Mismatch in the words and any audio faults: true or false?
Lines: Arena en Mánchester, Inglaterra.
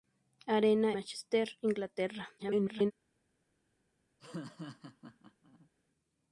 true